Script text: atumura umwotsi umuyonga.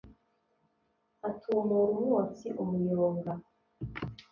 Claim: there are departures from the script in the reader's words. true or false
false